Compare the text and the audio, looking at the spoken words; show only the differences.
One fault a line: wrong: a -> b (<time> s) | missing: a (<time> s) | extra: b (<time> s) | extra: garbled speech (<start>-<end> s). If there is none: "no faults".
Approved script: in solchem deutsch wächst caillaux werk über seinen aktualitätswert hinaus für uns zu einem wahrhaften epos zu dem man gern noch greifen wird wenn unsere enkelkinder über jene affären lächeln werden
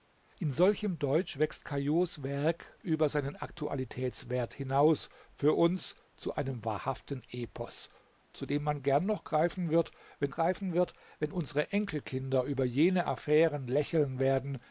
extra: greifen wird wenn (10.3 s)